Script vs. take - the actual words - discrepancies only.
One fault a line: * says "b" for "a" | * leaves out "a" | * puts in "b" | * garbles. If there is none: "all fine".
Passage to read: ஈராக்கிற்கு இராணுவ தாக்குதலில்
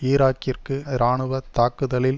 all fine